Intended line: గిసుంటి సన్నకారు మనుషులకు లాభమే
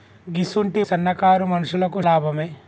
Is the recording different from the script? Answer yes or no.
no